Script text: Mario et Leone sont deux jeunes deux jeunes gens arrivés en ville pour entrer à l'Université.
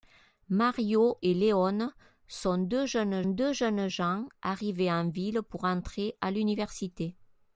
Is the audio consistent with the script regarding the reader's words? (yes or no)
yes